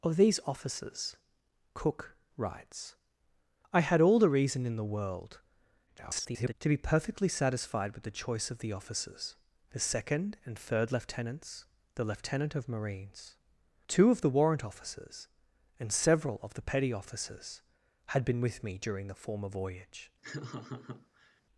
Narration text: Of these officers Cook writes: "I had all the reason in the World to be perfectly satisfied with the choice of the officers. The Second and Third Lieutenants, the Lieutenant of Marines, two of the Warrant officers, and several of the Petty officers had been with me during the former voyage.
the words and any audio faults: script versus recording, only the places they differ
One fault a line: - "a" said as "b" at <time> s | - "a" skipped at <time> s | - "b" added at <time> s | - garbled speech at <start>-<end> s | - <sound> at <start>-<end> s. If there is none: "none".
- garbled speech at 5.9-6.5 s
- laugh at 20.2-21.4 s